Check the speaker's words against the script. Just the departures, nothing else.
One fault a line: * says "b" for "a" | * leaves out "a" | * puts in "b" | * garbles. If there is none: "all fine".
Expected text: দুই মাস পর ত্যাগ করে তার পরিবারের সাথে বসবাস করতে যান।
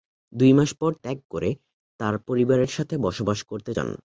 all fine